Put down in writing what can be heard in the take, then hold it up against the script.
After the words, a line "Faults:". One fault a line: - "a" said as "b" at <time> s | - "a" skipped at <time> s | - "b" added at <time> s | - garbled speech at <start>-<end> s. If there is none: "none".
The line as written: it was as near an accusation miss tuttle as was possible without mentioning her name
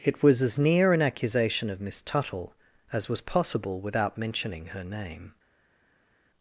it was as near an accusation of miss tuttle as was possible without mentioning her name
Faults:
- "of" added at 1.7 s